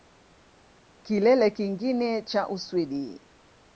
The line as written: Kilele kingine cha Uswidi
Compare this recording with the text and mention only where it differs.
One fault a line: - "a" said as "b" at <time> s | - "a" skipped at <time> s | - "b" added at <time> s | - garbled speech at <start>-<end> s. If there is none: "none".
none